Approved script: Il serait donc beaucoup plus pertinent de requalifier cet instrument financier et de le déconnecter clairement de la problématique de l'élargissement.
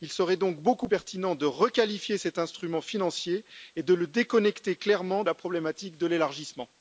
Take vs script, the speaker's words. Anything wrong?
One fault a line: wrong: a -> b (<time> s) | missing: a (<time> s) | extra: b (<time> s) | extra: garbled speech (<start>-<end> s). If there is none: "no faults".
missing: plus (0.9 s)
missing: de (5.2 s)